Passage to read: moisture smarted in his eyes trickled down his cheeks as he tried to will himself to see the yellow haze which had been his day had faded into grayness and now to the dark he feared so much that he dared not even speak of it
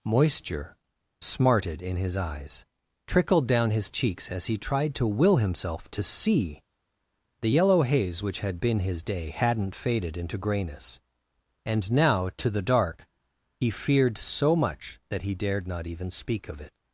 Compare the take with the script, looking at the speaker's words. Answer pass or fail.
fail